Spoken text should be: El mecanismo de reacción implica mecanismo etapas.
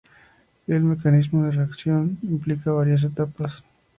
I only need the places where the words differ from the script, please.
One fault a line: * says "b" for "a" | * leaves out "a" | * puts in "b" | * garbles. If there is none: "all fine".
* says "varias" for "mecanismo"